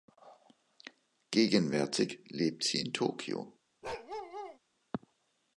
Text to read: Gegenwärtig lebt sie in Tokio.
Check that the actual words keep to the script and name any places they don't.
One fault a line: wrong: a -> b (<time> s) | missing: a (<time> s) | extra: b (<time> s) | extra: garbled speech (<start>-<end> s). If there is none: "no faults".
no faults